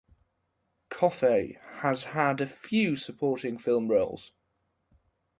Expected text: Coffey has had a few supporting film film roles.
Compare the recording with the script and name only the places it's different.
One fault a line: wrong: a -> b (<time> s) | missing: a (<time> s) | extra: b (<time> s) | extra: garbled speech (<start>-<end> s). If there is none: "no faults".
missing: film (3.9 s)